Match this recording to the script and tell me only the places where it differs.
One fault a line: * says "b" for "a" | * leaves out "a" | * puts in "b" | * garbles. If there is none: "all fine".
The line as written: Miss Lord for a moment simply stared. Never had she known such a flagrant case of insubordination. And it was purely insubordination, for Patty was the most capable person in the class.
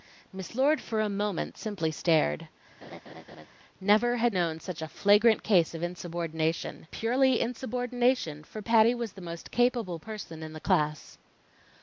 * leaves out "she"
* leaves out "And it was"